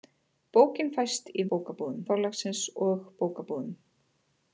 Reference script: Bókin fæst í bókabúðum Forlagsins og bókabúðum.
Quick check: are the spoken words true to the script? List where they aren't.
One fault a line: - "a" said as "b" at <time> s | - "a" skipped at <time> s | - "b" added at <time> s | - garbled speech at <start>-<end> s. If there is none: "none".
none